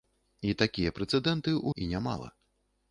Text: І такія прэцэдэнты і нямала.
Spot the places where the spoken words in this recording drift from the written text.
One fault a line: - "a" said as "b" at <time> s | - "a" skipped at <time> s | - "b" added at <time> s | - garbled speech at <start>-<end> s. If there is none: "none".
none